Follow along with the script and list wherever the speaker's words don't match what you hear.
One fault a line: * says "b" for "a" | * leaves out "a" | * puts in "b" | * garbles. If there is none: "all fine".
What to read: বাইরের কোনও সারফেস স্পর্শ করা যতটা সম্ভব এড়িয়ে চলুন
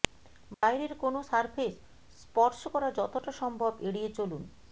all fine